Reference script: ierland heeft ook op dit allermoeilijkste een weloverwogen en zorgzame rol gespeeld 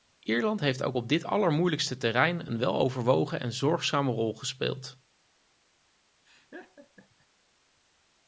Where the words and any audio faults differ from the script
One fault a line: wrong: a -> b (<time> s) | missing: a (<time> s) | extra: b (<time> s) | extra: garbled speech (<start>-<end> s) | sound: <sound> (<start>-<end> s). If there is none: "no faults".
extra: terrein (2.0 s)
sound: laugh (6.2-7.3 s)